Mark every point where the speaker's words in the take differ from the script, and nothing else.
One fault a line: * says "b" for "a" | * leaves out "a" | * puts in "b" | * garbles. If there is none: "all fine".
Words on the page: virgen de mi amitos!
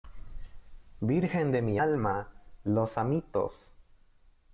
* puts in "alma los"